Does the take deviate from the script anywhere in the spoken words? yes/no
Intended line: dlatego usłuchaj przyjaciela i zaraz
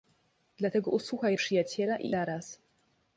no